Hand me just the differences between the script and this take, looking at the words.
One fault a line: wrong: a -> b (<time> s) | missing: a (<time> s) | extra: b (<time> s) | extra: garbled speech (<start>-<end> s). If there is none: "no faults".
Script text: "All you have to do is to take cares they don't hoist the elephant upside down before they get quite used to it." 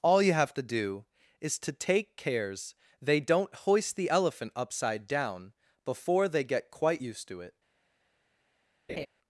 no faults